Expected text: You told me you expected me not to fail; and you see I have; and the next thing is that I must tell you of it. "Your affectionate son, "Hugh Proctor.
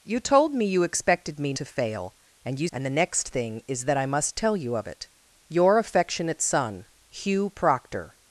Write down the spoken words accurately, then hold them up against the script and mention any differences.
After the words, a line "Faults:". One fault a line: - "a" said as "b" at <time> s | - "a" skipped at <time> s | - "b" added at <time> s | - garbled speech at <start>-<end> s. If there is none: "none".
You told me you expected me to fail; and you; and the next thing is that I must tell you of it. "Your affectionate son, "Hugh Proctor.
Faults:
- "not" skipped at 1.5 s
- "see I have" skipped at 2.7 s